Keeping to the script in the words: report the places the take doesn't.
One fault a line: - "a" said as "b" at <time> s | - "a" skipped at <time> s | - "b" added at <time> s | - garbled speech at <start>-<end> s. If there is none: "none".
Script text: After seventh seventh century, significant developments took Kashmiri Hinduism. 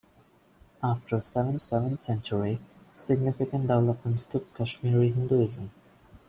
none